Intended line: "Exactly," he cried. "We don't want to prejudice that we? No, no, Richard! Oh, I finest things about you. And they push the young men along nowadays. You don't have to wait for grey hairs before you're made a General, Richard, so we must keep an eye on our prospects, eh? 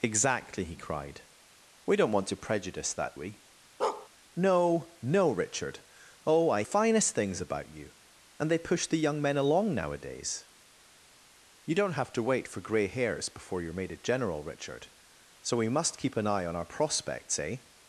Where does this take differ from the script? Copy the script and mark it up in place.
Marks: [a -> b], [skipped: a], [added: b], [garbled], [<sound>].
"Exactly," he cried. "We don't want to prejudice that we? [bark] No, no, Richard! Oh, I finest things about you. And they push the young men along nowadays. You don't have to wait for grey hairs before you're made a General, Richard, so we must keep an eye on our prospects, eh?